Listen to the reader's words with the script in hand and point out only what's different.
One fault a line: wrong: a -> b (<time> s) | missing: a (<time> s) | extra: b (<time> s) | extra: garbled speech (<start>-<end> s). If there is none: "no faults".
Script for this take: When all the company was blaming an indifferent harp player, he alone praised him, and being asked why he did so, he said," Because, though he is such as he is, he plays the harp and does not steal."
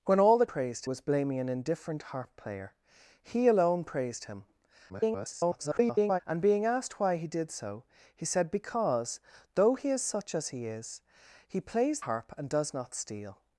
wrong: company -> praised (0.4 s)
extra: garbled speech (4.9-6.2 s)
missing: the (12.0 s)